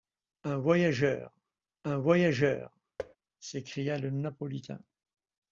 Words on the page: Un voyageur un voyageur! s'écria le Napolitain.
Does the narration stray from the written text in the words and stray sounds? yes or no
yes